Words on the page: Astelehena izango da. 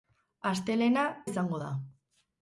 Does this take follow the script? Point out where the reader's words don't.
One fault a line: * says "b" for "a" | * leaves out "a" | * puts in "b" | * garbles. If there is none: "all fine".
all fine